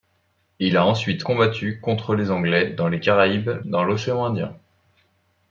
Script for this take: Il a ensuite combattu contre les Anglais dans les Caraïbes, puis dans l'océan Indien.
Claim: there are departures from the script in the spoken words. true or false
true